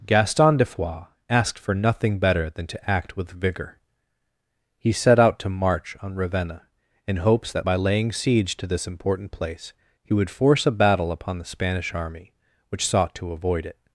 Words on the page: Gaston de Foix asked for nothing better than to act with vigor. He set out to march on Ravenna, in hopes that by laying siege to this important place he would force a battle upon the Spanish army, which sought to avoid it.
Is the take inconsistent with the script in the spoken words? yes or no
no